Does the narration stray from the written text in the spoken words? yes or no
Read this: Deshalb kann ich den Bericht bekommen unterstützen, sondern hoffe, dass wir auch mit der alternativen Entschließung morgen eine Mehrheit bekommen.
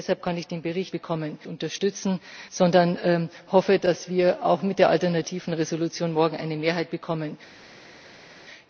no